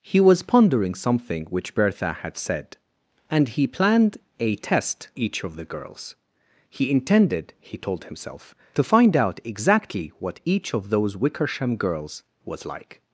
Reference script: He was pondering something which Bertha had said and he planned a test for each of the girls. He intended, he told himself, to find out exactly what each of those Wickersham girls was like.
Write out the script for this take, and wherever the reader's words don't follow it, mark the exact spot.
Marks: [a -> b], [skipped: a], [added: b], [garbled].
He was pondering something which Bertha had said and he planned a test [skipped: for] each of the girls. He intended, he told himself, to find out exactly what each of those Wickersham girls was like.